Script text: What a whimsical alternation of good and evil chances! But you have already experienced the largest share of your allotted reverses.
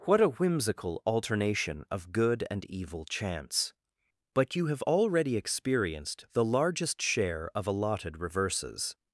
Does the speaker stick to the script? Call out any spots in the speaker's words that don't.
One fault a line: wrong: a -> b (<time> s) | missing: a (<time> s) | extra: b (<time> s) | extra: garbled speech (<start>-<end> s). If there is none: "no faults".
wrong: chances -> chance (3.0 s)
missing: your (7.7 s)